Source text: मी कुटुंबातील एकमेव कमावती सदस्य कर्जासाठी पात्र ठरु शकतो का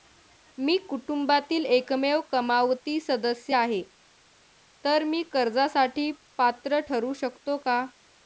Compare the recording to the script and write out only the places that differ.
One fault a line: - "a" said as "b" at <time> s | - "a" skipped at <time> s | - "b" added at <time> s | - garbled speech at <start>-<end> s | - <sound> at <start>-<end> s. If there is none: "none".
- "आहे तर मी" added at 3.5 s